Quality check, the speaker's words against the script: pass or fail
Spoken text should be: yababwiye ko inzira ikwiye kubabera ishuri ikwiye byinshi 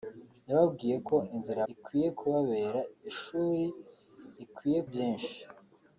pass